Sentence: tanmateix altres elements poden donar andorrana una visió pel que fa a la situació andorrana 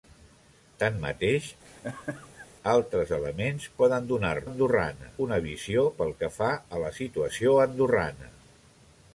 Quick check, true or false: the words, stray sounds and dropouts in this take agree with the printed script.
false